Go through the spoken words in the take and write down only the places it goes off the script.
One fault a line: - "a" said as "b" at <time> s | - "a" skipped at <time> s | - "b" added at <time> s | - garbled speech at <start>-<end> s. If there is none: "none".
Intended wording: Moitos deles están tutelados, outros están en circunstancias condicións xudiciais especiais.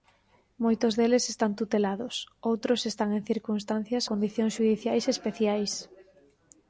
none